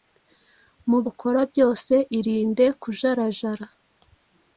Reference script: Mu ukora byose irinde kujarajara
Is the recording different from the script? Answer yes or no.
no